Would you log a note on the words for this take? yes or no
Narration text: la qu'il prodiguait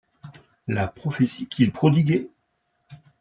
yes